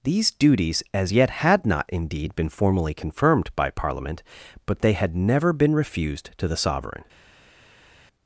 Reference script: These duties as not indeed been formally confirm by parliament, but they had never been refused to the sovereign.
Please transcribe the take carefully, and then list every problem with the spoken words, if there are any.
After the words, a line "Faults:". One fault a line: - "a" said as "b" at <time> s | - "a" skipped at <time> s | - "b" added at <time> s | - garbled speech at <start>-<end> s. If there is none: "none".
These duties as yet had not indeed been formally confirmed by parliament, but they had never been refused to the sovereign.
Faults:
- "yet had" added at 1.1 s
- "confirm" said as "confirmed" at 2.9 s